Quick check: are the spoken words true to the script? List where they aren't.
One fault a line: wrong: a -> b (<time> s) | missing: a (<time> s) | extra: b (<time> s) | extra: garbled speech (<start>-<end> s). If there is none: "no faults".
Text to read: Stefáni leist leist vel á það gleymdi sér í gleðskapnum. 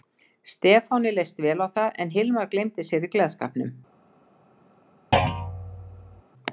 missing: leist (1.4 s)
extra: en Hilmar (2.0 s)